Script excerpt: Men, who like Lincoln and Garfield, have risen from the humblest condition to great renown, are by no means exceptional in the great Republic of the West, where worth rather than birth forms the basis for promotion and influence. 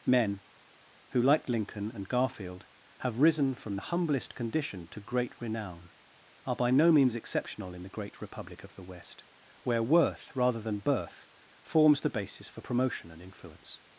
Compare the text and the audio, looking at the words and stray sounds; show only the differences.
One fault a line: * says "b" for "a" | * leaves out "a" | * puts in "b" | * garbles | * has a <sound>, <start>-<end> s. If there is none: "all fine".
all fine